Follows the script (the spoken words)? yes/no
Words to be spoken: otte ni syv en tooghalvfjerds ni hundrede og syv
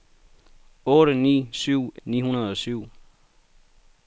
no